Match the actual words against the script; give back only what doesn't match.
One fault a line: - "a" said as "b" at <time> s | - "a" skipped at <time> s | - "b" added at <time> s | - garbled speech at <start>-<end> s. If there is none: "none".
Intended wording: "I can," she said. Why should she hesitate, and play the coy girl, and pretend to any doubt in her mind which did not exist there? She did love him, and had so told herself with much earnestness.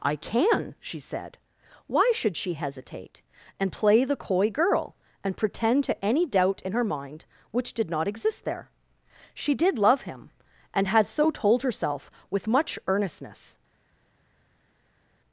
none